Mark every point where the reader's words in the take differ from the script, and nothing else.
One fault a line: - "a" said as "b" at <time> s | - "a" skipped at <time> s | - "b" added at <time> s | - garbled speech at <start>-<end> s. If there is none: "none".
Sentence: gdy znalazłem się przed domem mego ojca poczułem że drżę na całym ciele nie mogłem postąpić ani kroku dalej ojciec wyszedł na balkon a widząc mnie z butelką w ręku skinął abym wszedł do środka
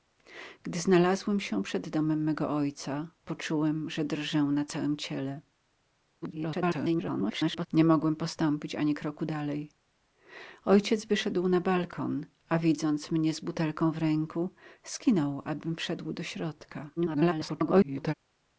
- garbled speech at 6.2-7.7 s
- garbled speech at 17.0-18.1 s